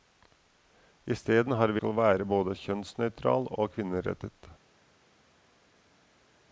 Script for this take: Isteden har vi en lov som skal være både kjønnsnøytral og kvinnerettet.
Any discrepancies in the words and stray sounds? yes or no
yes